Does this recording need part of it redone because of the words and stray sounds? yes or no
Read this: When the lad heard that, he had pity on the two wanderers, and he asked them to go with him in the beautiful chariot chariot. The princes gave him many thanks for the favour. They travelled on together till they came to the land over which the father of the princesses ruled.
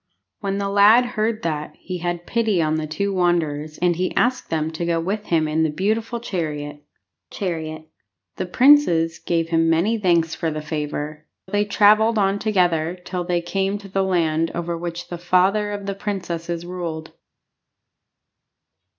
no